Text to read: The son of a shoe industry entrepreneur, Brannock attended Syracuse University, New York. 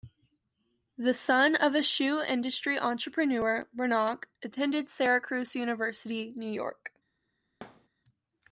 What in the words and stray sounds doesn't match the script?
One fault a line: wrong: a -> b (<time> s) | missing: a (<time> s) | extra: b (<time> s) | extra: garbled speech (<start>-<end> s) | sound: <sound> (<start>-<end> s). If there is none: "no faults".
sound: thud (7.6-7.9 s)